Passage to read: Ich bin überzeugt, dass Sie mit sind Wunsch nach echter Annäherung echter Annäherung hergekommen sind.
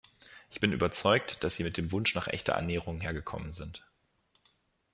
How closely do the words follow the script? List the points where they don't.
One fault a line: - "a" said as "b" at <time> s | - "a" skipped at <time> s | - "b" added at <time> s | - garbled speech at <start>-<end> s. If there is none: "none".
- "sind" said as "dem" at 1.8 s
- "echter Annäherung" skipped at 3.0 s